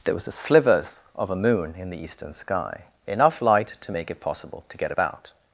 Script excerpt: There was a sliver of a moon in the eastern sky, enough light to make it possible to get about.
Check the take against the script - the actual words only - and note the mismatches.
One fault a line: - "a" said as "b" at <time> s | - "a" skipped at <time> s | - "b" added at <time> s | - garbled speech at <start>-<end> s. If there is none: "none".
- "sliver" said as "slivers" at 0.3 s